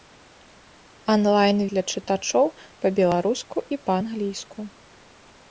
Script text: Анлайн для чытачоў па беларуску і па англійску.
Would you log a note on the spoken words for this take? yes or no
no